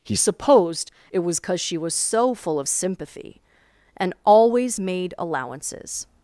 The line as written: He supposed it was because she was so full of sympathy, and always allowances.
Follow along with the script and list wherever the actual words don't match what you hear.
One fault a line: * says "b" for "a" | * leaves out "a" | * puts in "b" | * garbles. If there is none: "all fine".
* puts in "made"